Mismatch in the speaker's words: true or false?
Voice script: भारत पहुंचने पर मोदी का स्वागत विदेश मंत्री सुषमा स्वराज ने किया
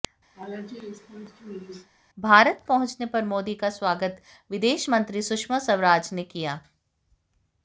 false